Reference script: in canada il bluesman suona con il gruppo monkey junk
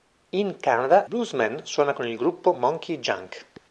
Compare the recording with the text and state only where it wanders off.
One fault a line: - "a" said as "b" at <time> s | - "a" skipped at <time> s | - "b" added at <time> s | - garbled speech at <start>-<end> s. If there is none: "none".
- "il" skipped at 1.1 s